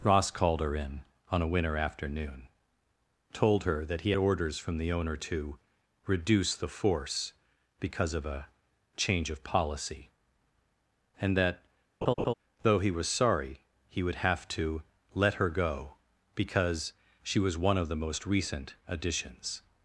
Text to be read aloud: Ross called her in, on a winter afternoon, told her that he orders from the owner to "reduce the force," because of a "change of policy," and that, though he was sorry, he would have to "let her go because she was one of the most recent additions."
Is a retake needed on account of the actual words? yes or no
no